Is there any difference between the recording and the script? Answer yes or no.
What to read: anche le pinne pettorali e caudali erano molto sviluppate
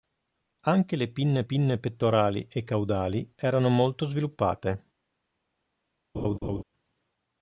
yes